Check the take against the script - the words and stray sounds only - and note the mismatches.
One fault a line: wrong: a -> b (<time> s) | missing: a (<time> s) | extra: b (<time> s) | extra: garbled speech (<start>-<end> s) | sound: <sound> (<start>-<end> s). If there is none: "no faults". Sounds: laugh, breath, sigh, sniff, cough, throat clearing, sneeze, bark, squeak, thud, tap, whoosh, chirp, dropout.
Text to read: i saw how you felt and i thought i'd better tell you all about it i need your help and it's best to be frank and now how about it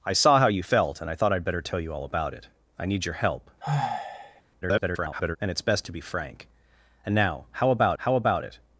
sound: sigh (3.6-4.4 s)
extra: garbled speech (4.6-5.4 s)
extra: how about (8.0 s)